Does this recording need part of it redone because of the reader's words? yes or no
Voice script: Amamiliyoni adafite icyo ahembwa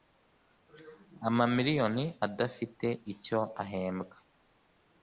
no